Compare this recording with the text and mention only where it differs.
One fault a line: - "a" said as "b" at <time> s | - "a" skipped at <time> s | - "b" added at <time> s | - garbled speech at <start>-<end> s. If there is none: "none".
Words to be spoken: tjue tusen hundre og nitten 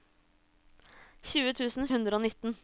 none